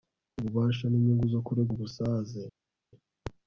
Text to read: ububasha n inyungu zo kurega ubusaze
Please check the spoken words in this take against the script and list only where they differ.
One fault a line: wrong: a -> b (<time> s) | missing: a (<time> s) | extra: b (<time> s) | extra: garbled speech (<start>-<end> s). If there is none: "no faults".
no faults